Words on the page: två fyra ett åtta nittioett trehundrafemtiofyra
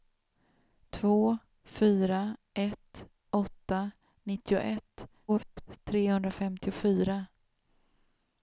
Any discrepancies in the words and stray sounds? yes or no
yes